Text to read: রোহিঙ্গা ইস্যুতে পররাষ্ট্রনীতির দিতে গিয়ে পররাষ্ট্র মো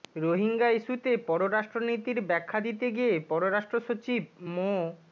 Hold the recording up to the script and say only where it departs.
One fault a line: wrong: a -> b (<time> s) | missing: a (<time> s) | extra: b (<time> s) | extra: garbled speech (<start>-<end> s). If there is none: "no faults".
extra: ব্যাখ্যা (2.3 s)
extra: সচিব (3.8 s)